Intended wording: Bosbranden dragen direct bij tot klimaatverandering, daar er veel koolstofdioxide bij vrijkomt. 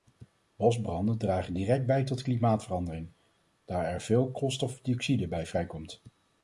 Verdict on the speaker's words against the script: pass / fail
pass